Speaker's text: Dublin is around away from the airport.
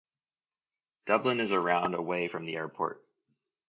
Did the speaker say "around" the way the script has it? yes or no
yes